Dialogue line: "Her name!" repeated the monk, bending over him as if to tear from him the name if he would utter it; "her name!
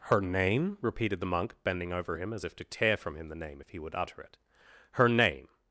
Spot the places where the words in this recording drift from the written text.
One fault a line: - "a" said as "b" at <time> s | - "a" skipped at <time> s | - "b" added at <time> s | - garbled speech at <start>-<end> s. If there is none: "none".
none